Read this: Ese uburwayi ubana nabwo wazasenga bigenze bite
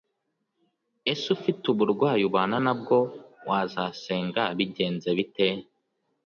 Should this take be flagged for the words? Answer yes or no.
yes